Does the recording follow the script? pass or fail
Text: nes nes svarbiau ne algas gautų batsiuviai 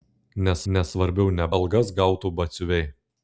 pass